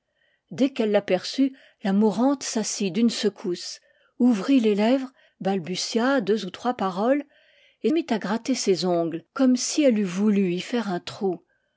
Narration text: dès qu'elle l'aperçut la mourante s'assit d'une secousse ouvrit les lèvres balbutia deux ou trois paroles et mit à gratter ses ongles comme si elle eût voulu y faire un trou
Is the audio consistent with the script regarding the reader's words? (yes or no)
yes